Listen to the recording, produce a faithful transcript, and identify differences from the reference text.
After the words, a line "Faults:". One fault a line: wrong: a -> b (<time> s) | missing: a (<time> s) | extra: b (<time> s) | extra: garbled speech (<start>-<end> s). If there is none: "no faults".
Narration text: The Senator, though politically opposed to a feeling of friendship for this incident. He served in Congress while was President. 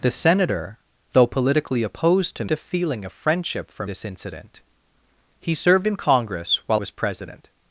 The Senator, though politically opposed to a feeling of friendship for this incident. He served in Congress while was President.
Faults:
no faults